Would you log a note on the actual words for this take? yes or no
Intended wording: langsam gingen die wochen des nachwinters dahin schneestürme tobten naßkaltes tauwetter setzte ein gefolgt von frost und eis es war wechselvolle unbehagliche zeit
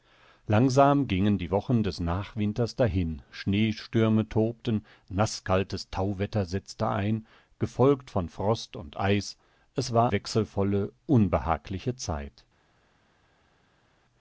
no